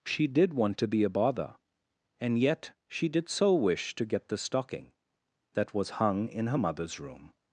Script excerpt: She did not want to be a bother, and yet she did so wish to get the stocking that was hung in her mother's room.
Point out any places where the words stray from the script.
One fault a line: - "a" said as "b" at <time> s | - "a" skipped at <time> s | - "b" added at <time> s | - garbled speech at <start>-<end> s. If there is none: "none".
- "not" skipped at 0.5 s